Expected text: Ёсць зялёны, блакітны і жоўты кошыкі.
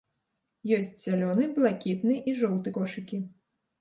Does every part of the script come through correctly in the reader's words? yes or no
yes